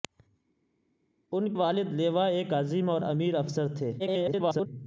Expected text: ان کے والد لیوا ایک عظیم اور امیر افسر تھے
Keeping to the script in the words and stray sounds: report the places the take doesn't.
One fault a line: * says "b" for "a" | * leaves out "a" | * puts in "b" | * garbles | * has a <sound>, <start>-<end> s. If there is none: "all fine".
* leaves out "کے"
* garbles